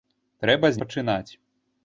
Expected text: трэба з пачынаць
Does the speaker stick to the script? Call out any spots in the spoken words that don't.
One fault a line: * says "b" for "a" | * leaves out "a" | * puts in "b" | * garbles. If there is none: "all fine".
all fine